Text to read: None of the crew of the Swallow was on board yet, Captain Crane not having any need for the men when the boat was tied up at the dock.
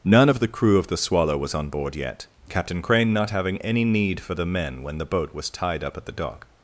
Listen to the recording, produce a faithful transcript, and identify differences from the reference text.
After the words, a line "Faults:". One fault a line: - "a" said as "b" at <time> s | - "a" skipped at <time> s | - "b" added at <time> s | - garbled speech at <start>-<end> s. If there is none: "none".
None of the crew of the Swallow was on board yet, Captain Crane not having any need for the men when the boat was tied up at the dock.
Faults:
none